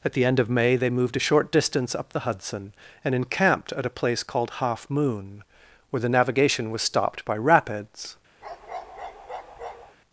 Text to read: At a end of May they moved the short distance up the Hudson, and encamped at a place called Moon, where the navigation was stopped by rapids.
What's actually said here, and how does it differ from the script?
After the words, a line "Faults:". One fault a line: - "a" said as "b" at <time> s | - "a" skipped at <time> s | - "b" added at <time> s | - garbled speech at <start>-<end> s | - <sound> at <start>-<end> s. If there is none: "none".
At the end of May they moved a short distance up the Hudson, and encamped at a place called Half Moon, where the navigation was stopped by rapids.
Faults:
- "a" said as "the" at 0.1 s
- "the" said as "a" at 1.1 s
- "Half" added at 4.6 s
- bark at 8.4-10.0 s